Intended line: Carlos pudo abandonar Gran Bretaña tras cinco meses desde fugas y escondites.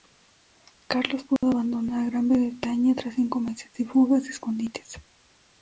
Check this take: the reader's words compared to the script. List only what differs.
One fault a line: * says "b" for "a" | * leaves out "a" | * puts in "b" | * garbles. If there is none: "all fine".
* says "de" for "desde"